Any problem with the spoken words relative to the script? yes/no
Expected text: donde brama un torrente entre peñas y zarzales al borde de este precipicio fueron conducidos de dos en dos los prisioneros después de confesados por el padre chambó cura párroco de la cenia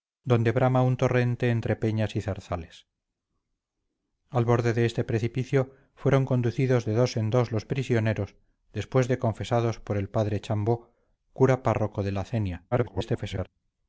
yes